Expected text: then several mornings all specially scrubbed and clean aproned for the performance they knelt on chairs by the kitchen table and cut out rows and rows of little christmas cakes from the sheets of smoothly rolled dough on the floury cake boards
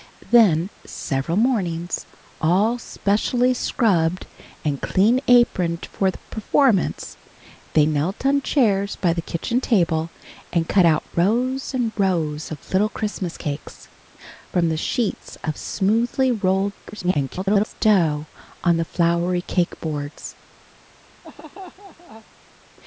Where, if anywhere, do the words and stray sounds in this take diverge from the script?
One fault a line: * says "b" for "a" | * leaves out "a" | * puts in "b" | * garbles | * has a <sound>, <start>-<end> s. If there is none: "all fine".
* garbles
* has a laugh, 21.2-22.3 s